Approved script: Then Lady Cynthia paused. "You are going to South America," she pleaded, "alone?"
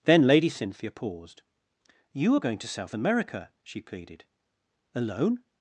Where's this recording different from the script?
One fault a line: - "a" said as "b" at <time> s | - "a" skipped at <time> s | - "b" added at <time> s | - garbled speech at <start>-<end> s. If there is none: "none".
none